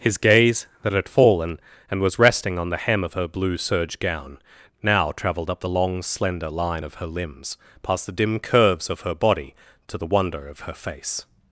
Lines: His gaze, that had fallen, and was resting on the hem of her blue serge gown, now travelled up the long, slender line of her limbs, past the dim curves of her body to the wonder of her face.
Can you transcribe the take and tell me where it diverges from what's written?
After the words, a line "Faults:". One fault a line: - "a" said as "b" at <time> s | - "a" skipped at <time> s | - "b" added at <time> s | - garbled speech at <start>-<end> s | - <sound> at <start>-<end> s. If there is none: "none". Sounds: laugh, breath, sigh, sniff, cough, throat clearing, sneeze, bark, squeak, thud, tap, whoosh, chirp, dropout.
His gaze, that had fallen, and was resting on the hem of her blue serge gown, now travelled up the long, slender line of her limbs, past the dim curves of her body to the wonder of her face.
Faults:
none